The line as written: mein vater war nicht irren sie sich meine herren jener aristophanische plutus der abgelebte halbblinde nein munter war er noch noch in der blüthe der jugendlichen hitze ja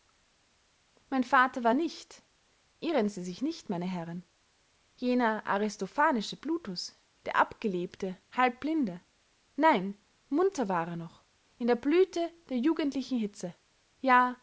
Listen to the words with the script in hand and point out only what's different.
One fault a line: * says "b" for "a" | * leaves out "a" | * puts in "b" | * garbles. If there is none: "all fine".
* puts in "nicht"
* leaves out "noch"